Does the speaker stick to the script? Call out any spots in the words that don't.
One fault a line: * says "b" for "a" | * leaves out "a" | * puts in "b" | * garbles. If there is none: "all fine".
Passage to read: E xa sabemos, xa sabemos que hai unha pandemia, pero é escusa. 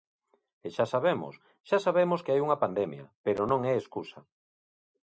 * puts in "non"